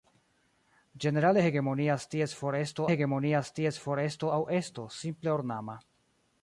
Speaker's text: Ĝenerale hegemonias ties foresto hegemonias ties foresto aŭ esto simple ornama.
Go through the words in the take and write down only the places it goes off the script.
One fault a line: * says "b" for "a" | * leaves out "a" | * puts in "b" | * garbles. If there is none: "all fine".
all fine